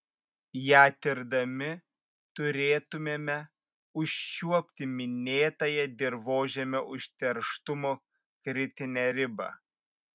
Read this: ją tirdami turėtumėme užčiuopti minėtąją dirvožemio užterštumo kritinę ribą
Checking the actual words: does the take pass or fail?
pass